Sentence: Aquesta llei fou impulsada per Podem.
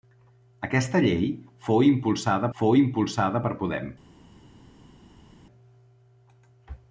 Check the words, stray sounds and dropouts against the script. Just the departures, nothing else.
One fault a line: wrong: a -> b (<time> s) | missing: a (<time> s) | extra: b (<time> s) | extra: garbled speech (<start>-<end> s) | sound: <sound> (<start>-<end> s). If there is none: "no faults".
extra: fou impulsada (2.6 s)